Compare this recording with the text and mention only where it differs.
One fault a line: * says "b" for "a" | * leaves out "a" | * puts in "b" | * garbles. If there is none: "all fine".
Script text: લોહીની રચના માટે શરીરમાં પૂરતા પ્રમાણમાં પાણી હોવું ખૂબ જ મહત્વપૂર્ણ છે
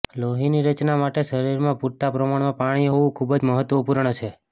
all fine